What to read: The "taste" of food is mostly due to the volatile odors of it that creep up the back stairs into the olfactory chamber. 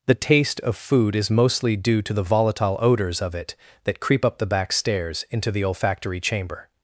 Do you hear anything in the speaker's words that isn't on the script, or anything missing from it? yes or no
no